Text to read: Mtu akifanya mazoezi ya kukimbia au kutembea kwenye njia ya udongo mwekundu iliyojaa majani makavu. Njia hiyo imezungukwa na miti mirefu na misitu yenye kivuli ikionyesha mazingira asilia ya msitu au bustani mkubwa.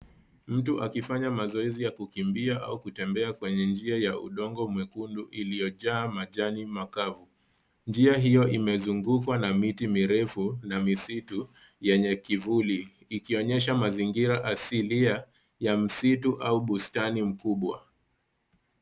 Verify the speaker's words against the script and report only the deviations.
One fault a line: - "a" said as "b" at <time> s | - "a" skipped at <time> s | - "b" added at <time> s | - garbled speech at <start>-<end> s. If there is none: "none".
none